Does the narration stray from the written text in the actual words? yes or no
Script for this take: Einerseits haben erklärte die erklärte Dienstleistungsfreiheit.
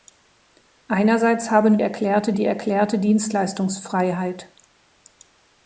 no